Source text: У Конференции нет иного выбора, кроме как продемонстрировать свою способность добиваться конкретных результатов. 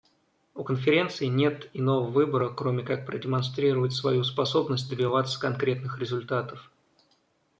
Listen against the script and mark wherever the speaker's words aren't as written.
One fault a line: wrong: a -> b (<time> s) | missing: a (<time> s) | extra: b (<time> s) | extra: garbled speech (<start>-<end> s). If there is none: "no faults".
no faults